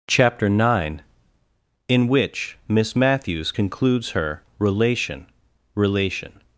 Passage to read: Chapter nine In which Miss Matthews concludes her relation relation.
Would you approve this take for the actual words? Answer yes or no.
yes